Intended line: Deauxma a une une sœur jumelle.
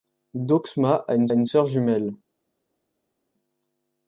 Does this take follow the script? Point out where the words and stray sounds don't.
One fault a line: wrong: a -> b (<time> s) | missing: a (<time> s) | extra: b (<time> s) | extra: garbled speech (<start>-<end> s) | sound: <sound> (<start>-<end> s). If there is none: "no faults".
no faults